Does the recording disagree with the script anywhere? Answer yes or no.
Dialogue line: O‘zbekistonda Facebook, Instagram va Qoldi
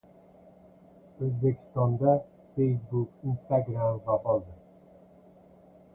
no